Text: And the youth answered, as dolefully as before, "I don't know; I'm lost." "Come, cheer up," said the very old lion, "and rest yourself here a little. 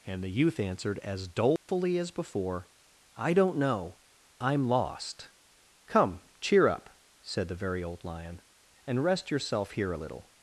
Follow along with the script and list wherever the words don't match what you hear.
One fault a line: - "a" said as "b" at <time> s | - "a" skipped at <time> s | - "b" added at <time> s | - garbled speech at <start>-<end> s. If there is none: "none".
none